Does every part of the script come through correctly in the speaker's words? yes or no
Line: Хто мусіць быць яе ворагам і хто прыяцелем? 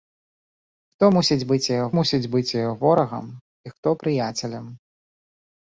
no